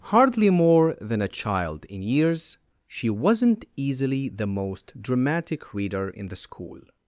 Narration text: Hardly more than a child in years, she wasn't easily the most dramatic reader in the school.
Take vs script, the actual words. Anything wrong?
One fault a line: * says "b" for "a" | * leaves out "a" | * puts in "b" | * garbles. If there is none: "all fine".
all fine